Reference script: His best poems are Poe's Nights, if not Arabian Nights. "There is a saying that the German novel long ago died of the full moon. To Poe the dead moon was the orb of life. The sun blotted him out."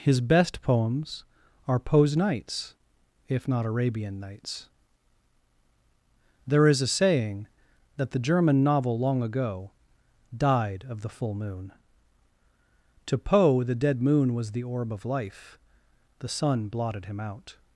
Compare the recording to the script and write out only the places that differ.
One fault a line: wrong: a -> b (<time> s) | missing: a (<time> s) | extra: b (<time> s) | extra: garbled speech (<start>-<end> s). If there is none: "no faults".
no faults